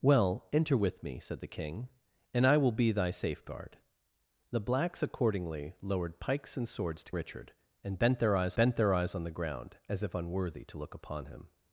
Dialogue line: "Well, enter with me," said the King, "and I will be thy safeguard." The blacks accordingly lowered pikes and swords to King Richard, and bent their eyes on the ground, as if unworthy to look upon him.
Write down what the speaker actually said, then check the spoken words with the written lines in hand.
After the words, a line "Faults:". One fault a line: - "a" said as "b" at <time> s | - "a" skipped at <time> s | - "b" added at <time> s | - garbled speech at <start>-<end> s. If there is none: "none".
"Well, enter with me," said the King, "and I will be thy safeguard." The blacks accordingly lowered pikes and swords to Richard, and bent their eyes bent their eyes on the ground, as if unworthy to look upon him.
Faults:
- "King" skipped at 7.1 s
- "bent their eyes" added at 8.5 s